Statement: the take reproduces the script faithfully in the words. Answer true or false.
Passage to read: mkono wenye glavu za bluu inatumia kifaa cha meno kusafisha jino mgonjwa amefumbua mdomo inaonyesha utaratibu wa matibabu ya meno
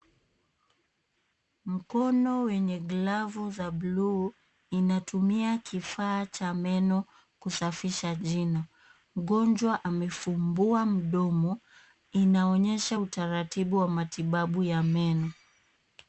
true